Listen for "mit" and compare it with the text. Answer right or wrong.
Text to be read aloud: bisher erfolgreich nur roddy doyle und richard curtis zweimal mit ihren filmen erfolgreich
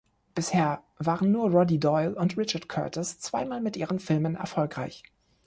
right